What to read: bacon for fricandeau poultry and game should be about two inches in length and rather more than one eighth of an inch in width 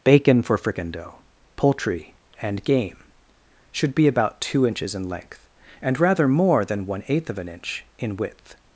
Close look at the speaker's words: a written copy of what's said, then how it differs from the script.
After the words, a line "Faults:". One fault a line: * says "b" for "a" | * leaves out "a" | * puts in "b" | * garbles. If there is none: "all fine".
bacon for fricandeau poultry and game should be about two inches in length and rather more than one eighth of an inch in width
Faults:
all fine